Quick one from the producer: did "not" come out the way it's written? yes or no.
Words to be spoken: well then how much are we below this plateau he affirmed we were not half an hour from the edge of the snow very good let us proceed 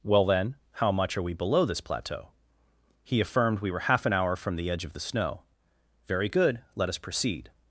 no